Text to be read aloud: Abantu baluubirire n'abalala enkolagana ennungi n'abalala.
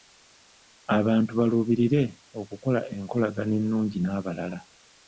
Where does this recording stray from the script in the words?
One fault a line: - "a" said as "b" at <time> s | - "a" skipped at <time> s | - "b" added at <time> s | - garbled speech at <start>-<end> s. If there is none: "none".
- "n'abalala" said as "okukola" at 2.4 s